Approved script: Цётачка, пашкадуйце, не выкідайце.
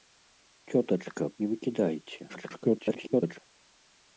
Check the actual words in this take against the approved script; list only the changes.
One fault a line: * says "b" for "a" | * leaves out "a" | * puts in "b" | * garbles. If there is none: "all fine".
* leaves out "пашкадуйце"
* garbles